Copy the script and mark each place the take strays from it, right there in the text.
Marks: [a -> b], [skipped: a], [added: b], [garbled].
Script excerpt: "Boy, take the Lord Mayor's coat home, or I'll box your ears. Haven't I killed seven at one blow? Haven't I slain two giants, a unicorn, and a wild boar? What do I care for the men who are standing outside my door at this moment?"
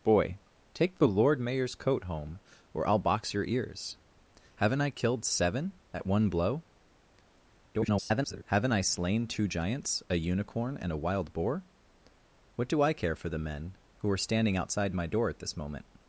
"Boy, take the Lord Mayor's coat home, or I'll box your ears. Haven't I killed seven at one blow? [garbled] Haven't I slain two giants, a unicorn, and a wild boar? What do I care for the men who are standing outside my door at this moment?"